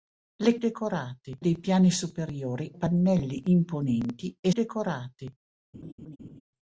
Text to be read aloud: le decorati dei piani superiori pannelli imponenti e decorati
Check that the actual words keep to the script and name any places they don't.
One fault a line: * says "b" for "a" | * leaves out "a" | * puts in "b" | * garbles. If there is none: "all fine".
all fine